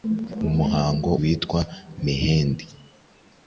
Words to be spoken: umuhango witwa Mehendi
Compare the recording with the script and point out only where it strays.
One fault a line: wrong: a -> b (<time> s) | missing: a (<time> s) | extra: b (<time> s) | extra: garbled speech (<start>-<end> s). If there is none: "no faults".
no faults